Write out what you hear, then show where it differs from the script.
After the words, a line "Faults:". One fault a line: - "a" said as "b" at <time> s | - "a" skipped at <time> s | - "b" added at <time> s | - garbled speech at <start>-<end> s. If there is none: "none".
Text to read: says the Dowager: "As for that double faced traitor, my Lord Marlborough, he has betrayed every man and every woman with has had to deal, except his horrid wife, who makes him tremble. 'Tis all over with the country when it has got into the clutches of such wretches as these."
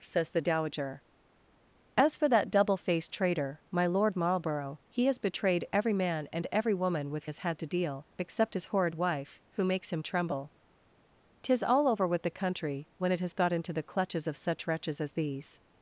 says the Dowager: "As for that double faced traitor, my Lord Marlborough, he has betrayed every man and every woman with has had to deal, except his horrid wife, who makes him tremble. 'Tis all over with the country when it has got into the clutches of such wretches as these."
Faults:
none